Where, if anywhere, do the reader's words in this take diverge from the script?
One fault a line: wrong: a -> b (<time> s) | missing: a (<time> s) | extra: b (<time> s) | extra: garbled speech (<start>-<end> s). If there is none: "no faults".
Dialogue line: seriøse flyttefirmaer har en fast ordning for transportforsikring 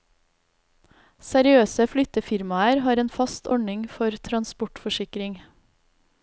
no faults